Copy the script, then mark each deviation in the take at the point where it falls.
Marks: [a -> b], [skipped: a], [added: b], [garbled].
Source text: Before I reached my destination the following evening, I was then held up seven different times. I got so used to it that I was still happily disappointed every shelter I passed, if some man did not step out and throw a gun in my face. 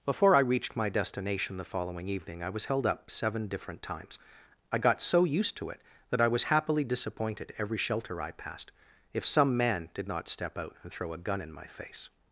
Before I reached my destination the following evening, I was [skipped: then] held up seven different times. I got so used to it that I was [skipped: still] happily disappointed every shelter I passed, if some man did not step out and throw a gun in my face.